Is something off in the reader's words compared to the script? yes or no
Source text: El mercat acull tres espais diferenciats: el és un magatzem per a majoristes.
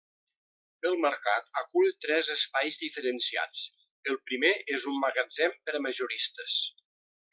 yes